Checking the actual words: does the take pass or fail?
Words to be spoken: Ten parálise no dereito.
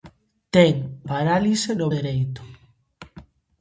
pass